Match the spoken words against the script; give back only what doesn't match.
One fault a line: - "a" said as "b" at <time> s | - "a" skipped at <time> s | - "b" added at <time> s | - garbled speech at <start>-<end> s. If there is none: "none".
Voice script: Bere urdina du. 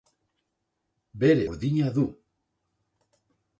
none